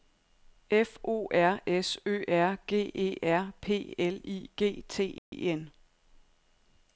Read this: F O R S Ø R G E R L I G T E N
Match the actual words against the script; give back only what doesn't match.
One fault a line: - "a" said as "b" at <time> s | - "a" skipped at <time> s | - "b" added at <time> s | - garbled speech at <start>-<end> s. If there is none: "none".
- "P" added at 3.6 s